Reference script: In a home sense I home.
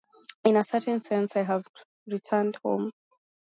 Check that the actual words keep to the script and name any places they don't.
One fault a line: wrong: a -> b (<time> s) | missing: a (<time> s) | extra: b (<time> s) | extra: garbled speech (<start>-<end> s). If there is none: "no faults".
wrong: home -> certain (0.6 s)
extra: have returned (1.4 s)